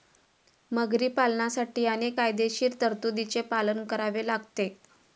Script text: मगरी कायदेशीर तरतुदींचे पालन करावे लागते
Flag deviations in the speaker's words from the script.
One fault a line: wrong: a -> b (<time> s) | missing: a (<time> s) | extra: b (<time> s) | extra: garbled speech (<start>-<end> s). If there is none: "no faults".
extra: पालनासाठी अनेक (1.1 s)